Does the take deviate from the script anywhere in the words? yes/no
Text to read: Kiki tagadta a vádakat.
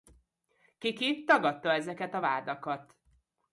yes